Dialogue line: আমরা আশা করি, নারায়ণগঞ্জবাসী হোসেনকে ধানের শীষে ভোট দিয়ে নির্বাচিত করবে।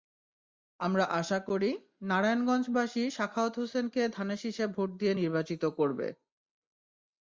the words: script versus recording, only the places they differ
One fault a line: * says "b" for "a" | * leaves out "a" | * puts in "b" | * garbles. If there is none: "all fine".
* puts in "সাখাওয়াত"